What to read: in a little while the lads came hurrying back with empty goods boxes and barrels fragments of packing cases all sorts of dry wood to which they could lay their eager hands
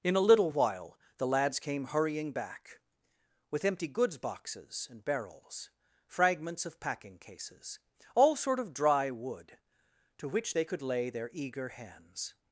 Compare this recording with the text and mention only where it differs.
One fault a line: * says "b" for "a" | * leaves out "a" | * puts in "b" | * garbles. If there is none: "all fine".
* says "sort" for "sorts"